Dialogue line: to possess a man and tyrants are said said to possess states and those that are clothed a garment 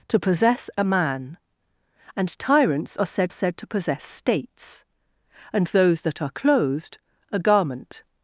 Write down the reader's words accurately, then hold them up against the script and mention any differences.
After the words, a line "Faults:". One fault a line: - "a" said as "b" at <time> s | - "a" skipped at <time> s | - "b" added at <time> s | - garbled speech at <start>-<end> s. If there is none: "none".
to possess a man and tyrants are said said to possess states and those that are clothed a garment
Faults:
none